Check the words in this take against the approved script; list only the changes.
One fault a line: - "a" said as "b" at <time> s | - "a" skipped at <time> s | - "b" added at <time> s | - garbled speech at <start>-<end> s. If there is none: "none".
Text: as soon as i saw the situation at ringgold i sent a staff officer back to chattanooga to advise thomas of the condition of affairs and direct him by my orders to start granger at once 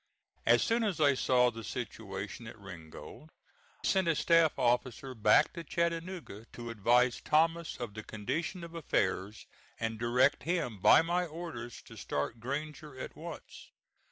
- "i" skipped at 3.3 s